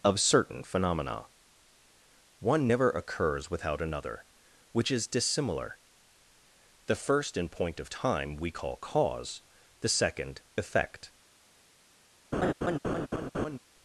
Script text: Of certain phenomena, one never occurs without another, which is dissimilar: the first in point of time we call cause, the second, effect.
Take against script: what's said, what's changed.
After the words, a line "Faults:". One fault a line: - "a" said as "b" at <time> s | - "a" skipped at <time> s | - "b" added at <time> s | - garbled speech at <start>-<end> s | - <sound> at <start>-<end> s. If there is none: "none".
Of certain phenomena, one never occurs without another, which is dissimilar: the first in point of time we call cause, the second, effect.
Faults:
- laugh at 12.3-13.6 s